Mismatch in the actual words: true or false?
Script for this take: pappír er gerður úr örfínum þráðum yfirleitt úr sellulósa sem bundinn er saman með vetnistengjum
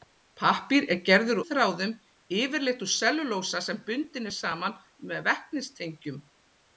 true